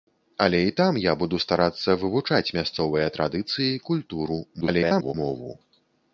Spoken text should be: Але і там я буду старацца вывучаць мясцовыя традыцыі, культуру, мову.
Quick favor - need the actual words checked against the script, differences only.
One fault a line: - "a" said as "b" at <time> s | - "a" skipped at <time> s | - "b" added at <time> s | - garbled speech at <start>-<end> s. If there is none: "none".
- garbled speech at 4.6-5.1 s